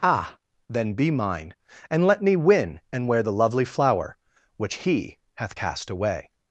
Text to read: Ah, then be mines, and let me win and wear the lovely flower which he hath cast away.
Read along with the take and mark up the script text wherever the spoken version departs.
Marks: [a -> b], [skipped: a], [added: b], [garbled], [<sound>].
Ah, then be [mines, -> mine] and let me win and wear the lovely flower which he hath cast away.